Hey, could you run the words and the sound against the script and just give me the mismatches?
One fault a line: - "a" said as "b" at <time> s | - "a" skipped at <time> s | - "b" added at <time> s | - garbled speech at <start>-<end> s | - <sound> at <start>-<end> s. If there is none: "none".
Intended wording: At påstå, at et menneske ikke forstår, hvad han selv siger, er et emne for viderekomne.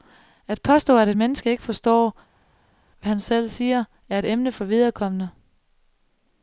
none